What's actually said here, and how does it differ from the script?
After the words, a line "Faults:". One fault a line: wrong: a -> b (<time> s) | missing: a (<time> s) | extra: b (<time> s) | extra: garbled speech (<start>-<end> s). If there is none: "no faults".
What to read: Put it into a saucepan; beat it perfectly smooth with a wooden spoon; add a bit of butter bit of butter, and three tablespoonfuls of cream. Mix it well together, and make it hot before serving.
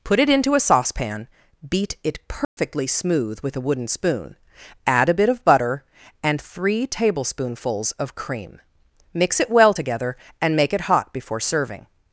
Put it into a saucepan; beat it perfectly smooth with a wooden spoon; add a bit of butter, and three tablespoonfuls of cream. Mix it well together, and make it hot before serving.
Faults:
missing: bit of butter (5.8 s)